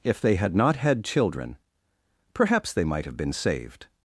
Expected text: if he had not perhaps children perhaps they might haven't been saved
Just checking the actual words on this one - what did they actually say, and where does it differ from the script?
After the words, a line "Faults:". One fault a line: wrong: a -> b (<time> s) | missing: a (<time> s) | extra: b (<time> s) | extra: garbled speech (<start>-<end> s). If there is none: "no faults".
if they had not had children perhaps they might have been saved
Faults:
wrong: he -> they (0.2 s)
wrong: perhaps -> had (0.8 s)
wrong: haven't -> have (3.0 s)